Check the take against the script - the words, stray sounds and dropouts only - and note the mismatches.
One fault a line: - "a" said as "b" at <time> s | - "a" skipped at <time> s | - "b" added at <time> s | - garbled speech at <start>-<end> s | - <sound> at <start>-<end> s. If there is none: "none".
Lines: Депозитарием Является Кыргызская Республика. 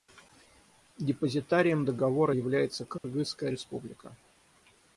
- "Договора" added at 1.9 s
- dropout at 3.0-3.0 s